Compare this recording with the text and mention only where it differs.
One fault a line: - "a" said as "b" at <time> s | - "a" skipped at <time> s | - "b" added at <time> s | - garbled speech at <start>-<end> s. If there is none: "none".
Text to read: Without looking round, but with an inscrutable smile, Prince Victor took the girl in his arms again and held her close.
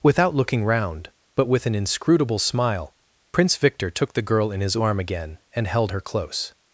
- "arms" said as "arm" at 4.8 s